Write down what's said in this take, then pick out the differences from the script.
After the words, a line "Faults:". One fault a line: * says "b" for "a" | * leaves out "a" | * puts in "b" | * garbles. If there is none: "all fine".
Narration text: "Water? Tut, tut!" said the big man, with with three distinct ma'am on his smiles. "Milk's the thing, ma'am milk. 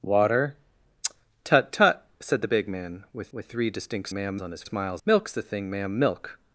"Water? Tut, tut!" said the big man, with with three distinct ma'am on his smiles. "Milk's the thing, ma'am milk.
Faults:
all fine